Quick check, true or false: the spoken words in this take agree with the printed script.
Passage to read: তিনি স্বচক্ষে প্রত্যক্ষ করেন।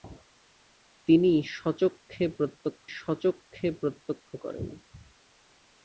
false